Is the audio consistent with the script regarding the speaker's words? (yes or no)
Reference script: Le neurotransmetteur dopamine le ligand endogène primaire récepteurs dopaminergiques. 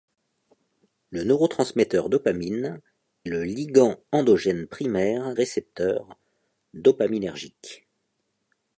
yes